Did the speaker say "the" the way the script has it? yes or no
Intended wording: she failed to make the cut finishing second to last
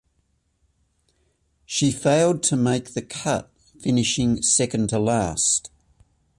yes